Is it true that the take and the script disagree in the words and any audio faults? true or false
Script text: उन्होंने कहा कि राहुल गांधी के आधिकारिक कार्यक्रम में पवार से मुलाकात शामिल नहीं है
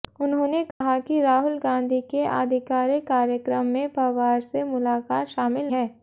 true